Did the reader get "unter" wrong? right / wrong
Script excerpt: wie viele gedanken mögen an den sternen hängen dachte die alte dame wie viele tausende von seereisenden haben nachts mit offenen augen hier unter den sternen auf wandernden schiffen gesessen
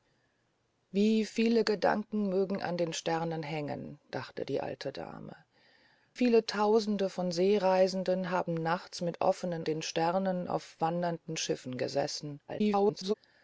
wrong